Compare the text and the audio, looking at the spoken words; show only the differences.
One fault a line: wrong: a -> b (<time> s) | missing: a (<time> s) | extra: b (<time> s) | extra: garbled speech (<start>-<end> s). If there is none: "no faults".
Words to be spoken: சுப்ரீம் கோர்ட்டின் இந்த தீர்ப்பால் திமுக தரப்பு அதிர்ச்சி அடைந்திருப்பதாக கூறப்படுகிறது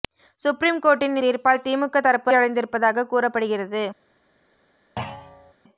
missing: இந்த (1.2 s)
missing: அதிர்ச்சி (2.3 s)